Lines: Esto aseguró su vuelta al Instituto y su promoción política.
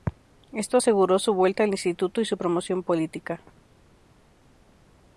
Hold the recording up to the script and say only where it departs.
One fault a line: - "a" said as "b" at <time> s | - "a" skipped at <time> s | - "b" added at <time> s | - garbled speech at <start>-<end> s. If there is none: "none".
none